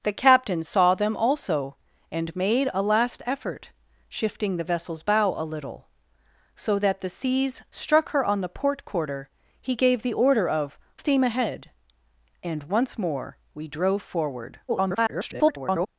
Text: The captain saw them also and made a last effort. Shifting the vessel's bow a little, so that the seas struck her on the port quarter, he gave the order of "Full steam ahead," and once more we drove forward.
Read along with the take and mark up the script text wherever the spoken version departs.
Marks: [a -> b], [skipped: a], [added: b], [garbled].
The captain saw them also and made a last effort. Shifting the vessel's bow a little, so that the seas struck her on the port quarter, he gave the order of [skipped: "Full] steam ahead," and once more we drove forward. [garbled]